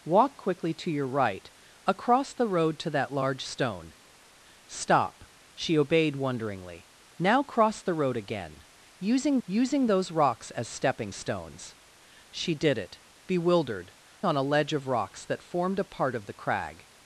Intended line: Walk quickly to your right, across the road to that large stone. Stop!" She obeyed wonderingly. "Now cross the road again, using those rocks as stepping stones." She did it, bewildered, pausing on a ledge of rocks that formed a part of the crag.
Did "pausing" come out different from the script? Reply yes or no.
yes